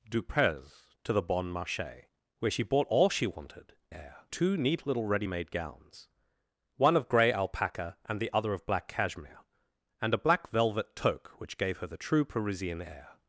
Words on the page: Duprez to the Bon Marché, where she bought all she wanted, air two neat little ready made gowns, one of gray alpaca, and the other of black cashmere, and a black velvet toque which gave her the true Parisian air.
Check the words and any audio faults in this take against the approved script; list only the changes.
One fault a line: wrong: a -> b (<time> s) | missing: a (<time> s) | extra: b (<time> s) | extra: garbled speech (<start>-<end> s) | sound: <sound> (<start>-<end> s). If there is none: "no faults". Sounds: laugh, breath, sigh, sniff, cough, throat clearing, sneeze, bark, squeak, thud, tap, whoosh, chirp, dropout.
no faults